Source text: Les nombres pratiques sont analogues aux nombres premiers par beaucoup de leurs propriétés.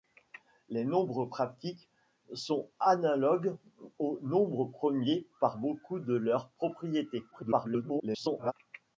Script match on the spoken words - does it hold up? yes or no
no